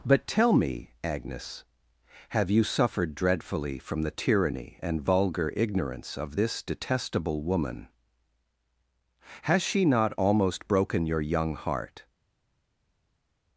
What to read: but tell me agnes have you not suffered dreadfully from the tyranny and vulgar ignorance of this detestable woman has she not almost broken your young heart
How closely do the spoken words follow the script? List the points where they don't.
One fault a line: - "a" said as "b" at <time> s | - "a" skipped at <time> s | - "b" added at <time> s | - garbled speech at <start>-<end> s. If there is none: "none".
- "not" skipped at 2.6 s